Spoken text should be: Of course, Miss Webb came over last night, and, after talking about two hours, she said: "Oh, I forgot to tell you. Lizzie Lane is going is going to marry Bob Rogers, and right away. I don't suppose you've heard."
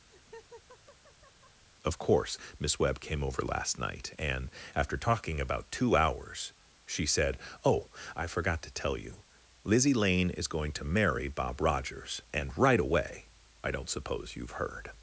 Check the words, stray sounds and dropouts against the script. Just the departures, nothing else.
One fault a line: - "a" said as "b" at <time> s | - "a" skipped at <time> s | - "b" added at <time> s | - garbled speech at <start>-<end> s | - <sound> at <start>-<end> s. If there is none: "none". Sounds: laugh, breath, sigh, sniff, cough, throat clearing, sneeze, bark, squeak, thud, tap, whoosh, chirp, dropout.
- laugh at 0.1-1.6 s
- "is going" skipped at 10.7 s